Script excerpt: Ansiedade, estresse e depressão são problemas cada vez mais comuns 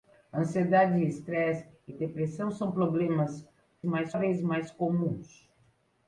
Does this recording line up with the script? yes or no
no